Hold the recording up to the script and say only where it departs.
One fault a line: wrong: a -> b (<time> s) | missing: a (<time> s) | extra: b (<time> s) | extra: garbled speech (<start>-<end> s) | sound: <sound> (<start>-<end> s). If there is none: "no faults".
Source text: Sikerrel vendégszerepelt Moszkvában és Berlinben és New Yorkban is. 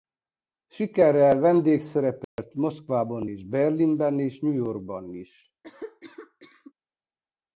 sound: dropout (2.2-2.4 s)
sound: cough (5.6-6.7 s)